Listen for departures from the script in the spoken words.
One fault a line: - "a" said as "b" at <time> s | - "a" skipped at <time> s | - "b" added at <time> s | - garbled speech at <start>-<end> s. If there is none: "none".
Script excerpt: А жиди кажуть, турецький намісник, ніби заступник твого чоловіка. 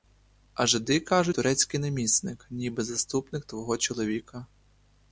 none